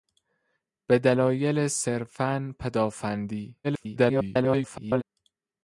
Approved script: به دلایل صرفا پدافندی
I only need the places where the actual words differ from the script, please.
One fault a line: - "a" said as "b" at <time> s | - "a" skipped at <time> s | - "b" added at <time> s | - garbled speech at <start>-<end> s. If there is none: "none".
- garbled speech at 3.6-5.0 s